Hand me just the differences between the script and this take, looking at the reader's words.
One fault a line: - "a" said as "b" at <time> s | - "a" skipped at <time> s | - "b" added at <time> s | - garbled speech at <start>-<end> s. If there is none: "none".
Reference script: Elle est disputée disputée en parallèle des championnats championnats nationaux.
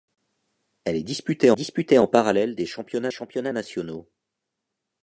none